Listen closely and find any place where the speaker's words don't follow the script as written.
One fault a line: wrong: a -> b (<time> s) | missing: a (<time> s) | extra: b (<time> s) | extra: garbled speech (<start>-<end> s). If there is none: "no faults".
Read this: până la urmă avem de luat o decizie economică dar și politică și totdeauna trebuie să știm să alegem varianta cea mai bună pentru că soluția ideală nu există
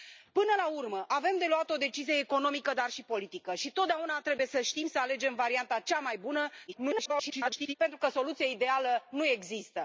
extra: garbled speech (6.7-7.7 s)